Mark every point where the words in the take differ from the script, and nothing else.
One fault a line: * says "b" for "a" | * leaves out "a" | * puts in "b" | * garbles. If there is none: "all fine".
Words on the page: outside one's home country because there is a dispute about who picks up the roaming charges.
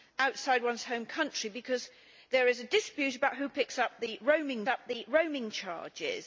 * puts in "up the roaming"